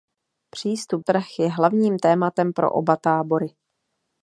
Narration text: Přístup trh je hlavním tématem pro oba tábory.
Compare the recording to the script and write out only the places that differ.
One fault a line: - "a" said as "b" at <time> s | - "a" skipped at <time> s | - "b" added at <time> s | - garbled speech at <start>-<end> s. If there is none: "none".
none